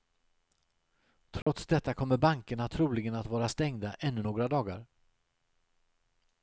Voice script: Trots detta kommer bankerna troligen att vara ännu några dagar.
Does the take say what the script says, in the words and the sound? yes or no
no